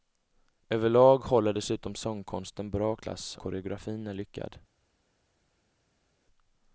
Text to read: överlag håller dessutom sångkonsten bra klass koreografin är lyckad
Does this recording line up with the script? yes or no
yes